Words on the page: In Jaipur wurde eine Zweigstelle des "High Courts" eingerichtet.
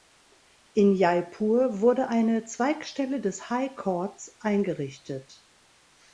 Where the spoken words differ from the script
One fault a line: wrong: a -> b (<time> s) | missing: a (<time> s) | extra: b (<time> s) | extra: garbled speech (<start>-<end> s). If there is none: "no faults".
no faults